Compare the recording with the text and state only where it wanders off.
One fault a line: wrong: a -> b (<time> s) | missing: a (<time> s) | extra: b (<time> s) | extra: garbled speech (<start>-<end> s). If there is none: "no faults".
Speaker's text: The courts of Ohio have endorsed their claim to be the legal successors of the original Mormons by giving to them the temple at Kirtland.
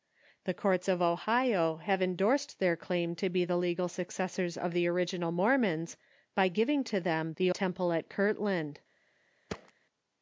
no faults